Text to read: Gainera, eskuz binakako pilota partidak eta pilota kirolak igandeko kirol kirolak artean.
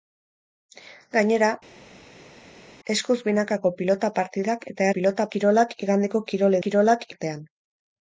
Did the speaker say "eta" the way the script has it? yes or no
yes